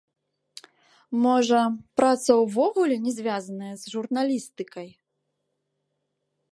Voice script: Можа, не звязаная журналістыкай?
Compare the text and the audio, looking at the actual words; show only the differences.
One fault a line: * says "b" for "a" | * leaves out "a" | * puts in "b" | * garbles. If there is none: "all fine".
* puts in "праца ўвогуле"
* puts in "з"